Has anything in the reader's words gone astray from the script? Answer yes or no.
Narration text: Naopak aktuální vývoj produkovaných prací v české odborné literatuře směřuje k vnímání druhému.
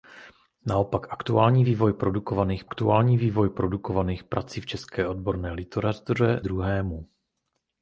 yes